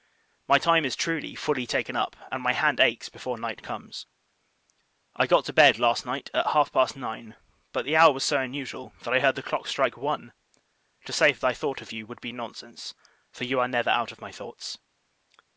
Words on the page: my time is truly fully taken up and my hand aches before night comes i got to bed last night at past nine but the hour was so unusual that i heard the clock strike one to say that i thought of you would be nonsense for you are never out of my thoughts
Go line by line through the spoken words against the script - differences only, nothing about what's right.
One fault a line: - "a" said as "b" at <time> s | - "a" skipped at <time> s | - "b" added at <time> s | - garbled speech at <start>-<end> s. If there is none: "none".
- "half" added at 6.5 s